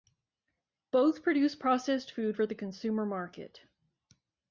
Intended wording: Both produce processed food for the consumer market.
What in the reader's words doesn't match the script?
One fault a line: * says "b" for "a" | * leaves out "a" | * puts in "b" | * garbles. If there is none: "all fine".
all fine